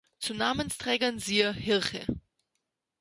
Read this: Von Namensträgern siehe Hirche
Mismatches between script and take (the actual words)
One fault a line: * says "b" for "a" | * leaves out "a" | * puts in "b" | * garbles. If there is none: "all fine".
* says "Zu" for "Von"